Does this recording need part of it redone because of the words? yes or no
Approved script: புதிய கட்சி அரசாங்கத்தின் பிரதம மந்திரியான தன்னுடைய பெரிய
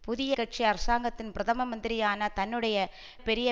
no